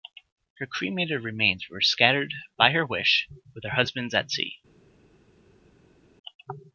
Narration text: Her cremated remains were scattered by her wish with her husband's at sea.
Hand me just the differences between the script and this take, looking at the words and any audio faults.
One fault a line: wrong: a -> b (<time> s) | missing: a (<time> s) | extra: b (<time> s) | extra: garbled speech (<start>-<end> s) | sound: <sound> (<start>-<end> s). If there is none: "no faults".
no faults